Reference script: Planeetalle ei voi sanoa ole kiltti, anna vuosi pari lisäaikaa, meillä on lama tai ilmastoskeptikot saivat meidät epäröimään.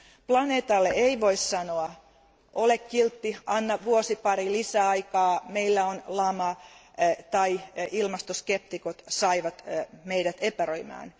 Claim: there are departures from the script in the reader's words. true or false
false